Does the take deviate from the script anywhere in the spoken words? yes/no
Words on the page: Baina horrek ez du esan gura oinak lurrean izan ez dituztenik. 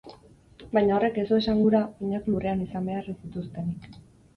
yes